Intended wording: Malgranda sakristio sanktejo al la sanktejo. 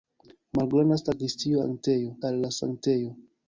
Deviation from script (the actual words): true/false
false